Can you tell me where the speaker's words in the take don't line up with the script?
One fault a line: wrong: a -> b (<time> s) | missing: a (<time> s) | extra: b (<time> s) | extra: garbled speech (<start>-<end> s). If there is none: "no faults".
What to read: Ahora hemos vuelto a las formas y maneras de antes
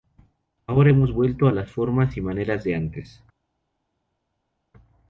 no faults